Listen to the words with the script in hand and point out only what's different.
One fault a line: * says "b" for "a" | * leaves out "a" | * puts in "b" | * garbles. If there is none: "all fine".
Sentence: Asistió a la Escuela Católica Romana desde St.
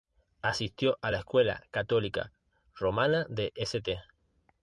* says "de" for "desde"